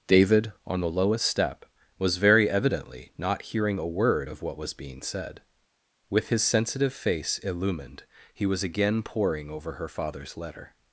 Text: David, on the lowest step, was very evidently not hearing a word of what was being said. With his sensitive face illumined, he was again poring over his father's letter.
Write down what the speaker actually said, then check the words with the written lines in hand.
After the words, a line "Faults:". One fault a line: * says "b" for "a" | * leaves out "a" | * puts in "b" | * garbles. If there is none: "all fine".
David, on the lowest step, was very evidently not hearing a word of what was being said. With his sensitive face illumined, he was again poring over her father's letter.
Faults:
* says "her" for "his"